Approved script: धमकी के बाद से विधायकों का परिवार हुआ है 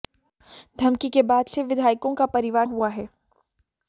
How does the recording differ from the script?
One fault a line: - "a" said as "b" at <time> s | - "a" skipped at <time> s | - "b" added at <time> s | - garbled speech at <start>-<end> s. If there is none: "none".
none